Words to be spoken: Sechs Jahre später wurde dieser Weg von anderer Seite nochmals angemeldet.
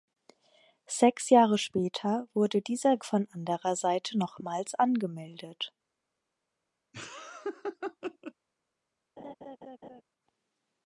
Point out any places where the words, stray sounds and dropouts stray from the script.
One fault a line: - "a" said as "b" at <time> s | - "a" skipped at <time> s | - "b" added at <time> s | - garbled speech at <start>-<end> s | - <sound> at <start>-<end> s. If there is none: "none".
- "Weg" skipped at 3.0 s
- laugh at 6.9-8.3 s
- laugh at 9.2-10.0 s